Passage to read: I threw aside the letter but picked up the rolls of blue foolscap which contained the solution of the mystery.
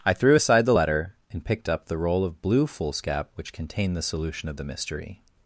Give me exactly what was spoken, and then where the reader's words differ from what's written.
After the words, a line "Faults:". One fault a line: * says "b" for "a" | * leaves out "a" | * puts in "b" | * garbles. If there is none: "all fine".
I threw aside the letter and picked up the roll of blue foolscap which contained the solution of the mystery.
Faults:
* says "and" for "but"
* says "roll" for "rolls"